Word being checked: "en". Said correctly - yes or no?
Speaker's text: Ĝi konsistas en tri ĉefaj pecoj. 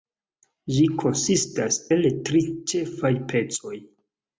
no